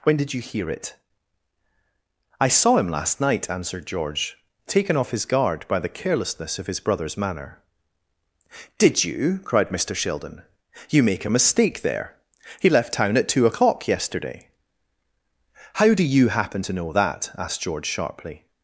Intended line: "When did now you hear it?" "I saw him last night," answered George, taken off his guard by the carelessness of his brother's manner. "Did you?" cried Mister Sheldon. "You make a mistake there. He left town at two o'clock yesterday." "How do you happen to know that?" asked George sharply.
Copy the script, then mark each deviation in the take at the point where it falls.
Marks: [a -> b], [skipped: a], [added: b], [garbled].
"When did [skipped: now] you hear it?" "I saw him last night," answered George, taken off his guard by the carelessness of his brother's manner. "Did you?" cried Mister Sheldon. "You make a mistake there. He left town at two o'clock yesterday." "How do you happen to know that?" asked George sharply.